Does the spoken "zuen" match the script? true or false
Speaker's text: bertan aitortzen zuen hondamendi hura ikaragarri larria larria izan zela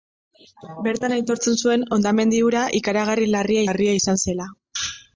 true